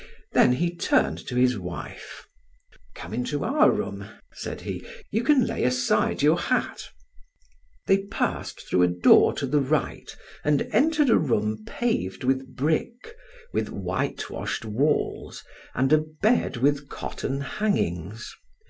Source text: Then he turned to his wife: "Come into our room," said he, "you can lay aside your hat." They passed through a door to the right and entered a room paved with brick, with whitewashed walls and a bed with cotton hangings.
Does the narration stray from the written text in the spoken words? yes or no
no